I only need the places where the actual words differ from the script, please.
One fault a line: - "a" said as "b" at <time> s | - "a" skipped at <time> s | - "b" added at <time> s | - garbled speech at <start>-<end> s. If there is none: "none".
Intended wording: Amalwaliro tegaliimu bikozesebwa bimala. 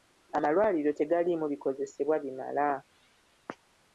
none